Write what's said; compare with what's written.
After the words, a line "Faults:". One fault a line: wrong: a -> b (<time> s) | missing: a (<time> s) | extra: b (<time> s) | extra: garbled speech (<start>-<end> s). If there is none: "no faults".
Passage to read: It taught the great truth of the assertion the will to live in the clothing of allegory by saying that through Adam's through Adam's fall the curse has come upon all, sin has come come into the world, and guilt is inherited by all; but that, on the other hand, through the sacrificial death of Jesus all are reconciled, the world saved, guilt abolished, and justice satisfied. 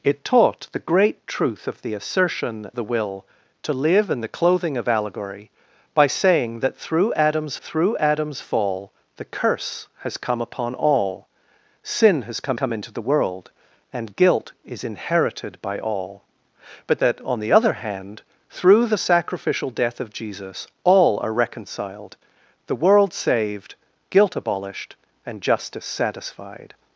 It taught the great truth of the assertion the will to live in the clothing of allegory by saying that through Adam's through Adam's fall the curse has come upon all, sin has come come into the world, and guilt is inherited by all; but that, on the other hand, through the sacrificial death of Jesus all are reconciled, the world saved, guilt abolished, and justice satisfied.
Faults:
no faults